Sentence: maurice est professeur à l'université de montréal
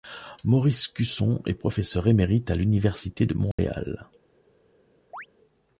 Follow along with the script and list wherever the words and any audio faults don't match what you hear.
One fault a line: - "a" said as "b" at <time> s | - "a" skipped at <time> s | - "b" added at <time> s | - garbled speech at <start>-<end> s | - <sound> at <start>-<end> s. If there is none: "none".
- "cusson" added at 0.9 s
- "émérite" added at 2.1 s
- dropout at 3.5-3.6 s
- chirp at 5.1-5.3 s